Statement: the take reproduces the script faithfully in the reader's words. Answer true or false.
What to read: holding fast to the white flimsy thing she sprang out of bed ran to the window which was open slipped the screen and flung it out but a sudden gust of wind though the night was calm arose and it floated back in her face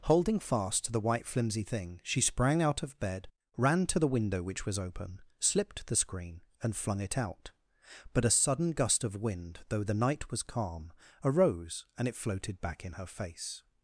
true